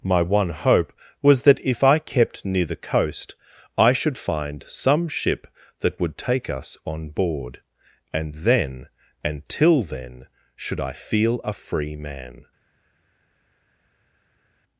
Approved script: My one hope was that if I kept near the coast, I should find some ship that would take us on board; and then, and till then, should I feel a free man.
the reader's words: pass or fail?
pass